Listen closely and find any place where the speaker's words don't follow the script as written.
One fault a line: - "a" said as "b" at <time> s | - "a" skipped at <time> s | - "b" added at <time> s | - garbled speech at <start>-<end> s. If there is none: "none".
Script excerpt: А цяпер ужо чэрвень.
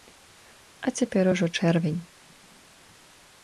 none